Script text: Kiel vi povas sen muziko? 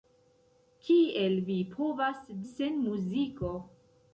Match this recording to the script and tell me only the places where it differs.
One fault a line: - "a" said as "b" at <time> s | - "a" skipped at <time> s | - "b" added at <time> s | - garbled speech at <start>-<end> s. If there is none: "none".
none